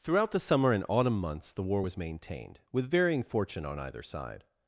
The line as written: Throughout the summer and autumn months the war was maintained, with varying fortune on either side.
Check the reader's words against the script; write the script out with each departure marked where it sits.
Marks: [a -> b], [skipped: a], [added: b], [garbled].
Throughout the summer and autumn months the war was maintained, with varying fortune on either side.